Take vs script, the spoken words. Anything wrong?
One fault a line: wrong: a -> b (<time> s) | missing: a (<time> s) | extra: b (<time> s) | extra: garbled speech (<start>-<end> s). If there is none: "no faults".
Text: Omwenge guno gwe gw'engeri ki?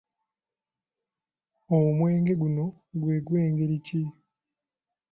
no faults